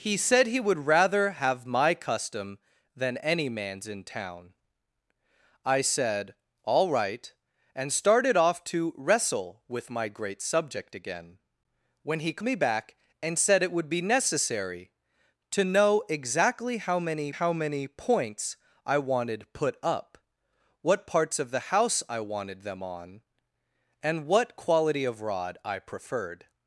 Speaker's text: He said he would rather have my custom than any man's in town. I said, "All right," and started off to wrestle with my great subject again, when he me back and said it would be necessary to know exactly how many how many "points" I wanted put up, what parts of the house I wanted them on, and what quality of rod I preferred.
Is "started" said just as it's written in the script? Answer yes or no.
yes